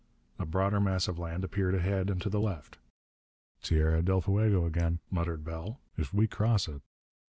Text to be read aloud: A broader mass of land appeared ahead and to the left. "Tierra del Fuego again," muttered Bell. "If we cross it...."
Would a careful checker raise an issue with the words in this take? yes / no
no